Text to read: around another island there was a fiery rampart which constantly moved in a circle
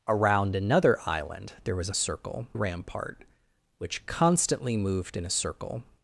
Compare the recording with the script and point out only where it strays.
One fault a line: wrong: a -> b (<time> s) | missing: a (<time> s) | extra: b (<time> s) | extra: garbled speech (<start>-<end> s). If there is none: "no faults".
wrong: fiery -> circle (1.9 s)